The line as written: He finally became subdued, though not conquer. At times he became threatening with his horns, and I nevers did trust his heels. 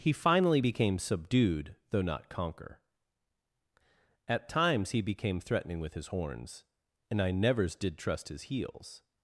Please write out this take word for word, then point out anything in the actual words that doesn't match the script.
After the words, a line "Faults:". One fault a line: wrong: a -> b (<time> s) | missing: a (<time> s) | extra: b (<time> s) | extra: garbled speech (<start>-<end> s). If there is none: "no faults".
He finally became subdued, though not conquer. At times he became threatening with his horns, and I nevers did trust his heels.
Faults:
no faults